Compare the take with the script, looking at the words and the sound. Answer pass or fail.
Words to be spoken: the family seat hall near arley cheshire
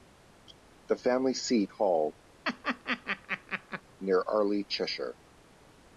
fail